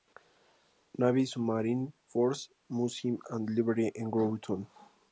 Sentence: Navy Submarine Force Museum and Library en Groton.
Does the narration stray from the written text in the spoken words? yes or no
no